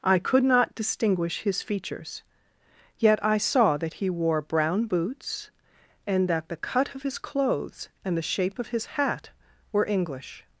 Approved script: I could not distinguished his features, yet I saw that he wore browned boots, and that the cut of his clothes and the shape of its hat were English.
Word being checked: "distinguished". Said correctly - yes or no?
no